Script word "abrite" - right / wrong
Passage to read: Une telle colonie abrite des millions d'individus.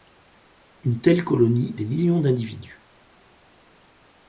wrong